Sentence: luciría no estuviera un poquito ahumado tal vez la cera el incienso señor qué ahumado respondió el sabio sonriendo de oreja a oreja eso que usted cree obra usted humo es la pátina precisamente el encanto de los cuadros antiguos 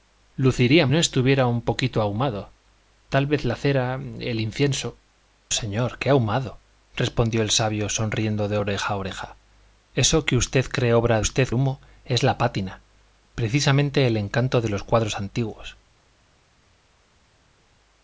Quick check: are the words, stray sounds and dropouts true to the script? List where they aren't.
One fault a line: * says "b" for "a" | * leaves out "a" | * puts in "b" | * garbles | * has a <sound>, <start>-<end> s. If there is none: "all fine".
all fine